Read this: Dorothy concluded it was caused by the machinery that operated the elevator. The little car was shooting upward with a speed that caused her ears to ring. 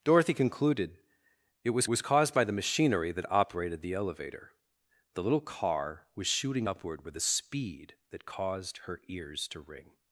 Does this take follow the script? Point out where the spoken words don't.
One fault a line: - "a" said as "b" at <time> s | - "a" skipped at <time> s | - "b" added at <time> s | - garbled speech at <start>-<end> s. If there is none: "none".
- "was" added at 1.8 s